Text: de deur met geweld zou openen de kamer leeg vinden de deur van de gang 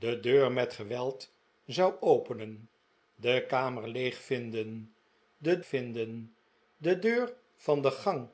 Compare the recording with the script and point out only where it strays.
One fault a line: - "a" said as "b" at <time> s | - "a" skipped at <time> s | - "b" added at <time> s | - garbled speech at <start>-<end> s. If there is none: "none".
- "vinden de" added at 5.6 s